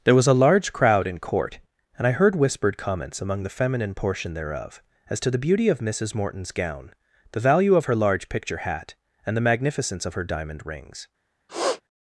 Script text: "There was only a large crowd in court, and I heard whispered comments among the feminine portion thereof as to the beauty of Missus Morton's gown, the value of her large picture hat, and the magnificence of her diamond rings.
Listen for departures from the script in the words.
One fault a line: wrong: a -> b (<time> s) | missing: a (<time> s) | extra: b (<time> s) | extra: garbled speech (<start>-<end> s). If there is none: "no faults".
missing: only (0.2 s)